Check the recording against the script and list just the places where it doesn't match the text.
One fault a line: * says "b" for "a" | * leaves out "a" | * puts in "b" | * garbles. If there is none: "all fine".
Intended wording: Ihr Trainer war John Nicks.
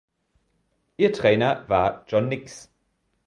all fine